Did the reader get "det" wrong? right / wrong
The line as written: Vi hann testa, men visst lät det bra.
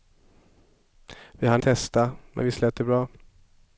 right